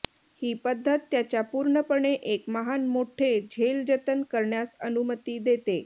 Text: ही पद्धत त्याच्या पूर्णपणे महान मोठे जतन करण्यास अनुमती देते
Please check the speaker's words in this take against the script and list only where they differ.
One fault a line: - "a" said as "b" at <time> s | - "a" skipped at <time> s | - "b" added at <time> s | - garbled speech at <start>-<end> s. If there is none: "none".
- "एक" added at 2.1 s
- "झेल" added at 3.4 s